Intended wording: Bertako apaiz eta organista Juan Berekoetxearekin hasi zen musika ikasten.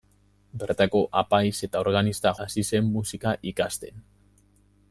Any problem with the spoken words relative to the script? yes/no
yes